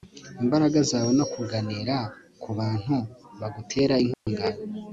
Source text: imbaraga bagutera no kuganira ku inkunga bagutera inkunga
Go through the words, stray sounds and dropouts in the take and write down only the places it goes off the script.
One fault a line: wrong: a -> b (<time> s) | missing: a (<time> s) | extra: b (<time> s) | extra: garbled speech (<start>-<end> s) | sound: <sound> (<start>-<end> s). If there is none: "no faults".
wrong: bagutera -> zawe (0.9 s)
wrong: inkunga -> bantu (2.6 s)
sound: dropout (4.1-4.3 s)